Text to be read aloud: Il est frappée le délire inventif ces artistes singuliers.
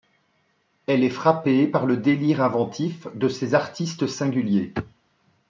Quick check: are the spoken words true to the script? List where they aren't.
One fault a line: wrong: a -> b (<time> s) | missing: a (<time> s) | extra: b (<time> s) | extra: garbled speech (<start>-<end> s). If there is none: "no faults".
wrong: Il -> Elle (0.9 s)
extra: par (1.7 s)
extra: de (3.1 s)